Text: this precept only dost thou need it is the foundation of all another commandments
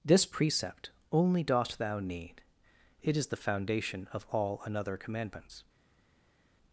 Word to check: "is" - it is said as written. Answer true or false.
true